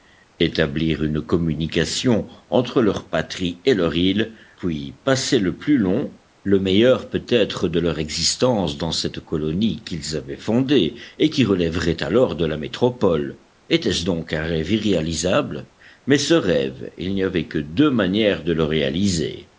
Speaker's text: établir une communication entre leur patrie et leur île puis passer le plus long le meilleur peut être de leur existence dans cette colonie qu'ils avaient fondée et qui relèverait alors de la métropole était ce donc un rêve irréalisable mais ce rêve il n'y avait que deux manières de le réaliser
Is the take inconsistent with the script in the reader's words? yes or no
no